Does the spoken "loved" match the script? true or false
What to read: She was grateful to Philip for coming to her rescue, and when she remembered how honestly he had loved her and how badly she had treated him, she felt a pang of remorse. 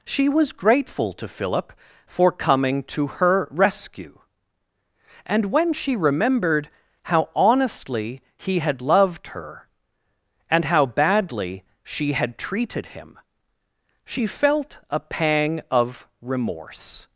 true